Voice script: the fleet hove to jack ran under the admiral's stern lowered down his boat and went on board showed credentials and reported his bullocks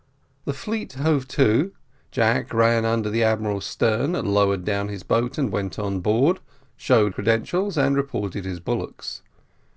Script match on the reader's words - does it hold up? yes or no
yes